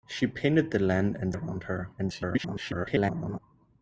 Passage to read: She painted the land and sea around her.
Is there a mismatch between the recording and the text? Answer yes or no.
yes